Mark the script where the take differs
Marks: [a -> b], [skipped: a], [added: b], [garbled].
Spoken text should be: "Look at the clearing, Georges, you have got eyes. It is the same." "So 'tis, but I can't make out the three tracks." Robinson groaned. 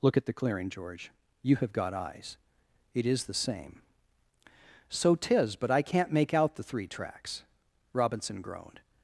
"Look at the clearing, [Georges, -> George] you have got eyes. It is the same." "So 'tis, but I can't make out the three tracks." Robinson groaned.